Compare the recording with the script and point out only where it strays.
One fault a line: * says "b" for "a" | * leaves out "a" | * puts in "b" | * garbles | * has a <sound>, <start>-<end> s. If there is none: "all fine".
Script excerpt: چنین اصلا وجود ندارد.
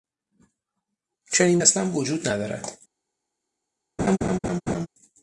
* has a laugh, 4.0-4.9 s